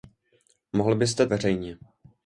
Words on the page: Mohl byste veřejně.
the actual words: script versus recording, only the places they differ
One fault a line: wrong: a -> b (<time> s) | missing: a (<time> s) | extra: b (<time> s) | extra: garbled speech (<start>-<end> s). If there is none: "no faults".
no faults